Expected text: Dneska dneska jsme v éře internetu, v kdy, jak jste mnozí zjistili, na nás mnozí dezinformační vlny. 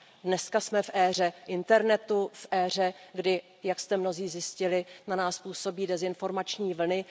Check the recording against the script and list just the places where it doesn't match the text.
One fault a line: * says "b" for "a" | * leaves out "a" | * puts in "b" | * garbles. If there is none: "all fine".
* leaves out "dneska"
* puts in "éře"
* says "působí" for "mnozí"